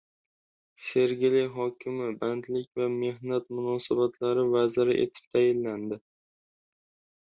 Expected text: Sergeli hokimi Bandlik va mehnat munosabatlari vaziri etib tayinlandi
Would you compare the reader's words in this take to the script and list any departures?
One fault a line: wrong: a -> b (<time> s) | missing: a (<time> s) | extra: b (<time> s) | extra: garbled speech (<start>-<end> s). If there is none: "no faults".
no faults